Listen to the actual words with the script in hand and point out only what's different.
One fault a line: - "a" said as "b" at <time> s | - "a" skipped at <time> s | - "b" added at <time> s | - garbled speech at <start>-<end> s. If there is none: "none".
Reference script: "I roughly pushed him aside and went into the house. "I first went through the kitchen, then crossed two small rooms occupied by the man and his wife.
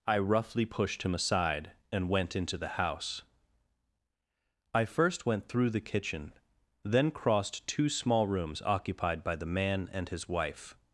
none